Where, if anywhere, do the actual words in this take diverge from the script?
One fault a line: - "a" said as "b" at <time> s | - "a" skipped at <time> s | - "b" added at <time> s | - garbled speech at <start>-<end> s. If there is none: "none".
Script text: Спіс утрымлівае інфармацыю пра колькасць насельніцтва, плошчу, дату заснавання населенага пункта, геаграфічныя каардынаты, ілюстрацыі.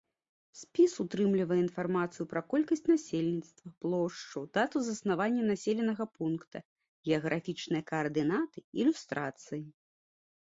none